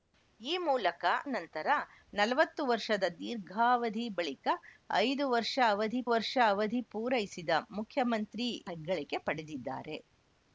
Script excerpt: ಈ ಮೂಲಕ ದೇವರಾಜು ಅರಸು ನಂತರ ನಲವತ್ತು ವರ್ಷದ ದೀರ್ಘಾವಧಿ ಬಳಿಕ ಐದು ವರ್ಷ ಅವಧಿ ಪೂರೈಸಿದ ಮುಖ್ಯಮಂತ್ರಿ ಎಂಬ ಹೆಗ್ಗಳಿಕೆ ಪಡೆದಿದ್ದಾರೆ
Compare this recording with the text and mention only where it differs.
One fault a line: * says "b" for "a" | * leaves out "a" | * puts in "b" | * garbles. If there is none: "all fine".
* leaves out "ದೇವರಾಜು ಅರಸು"
* puts in "ವರ್ಷ ಅವಧಿ"
* leaves out "ಎಂಬ"